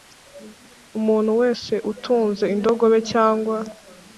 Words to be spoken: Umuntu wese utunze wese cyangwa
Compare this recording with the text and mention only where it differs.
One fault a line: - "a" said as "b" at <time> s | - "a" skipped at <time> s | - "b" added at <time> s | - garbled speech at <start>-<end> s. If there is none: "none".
- "wese" said as "indogobe" at 2.5 s